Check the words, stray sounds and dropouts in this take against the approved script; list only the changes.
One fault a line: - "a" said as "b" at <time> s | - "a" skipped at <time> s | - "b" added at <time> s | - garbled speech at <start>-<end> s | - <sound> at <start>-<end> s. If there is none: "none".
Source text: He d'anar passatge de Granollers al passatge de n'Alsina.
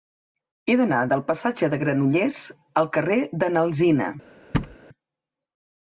- "del" added at 1.1 s
- "passatge" said as "carrer" at 3.0 s
- thud at 4.5-4.8 s